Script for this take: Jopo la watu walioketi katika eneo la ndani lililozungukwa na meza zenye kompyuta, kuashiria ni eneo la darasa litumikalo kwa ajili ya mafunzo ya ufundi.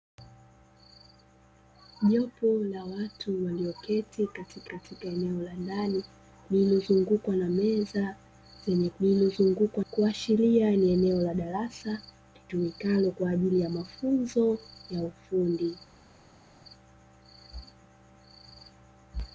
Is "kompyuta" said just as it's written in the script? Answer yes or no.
no